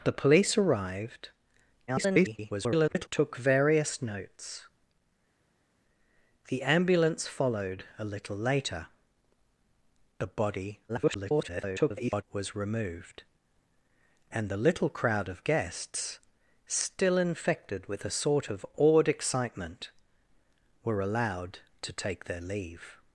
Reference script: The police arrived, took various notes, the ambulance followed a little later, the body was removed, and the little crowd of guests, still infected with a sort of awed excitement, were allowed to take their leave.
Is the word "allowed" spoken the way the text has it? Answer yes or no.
yes